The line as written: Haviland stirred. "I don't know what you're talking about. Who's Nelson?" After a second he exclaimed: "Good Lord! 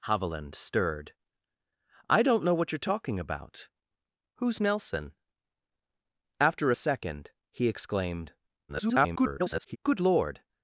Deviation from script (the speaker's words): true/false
true